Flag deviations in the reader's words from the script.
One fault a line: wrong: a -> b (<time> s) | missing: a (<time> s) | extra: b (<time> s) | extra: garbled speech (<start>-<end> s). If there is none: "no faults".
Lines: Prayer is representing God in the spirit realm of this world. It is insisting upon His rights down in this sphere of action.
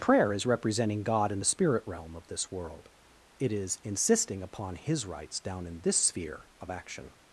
no faults